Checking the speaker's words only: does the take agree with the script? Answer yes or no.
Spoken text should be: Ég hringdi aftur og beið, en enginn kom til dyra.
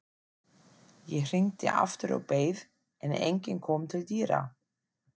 yes